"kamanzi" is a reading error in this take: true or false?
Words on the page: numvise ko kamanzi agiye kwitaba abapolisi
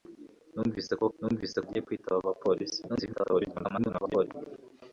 true